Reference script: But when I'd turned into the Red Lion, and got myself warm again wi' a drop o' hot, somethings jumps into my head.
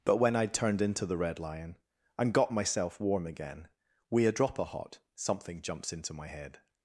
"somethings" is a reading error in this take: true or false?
true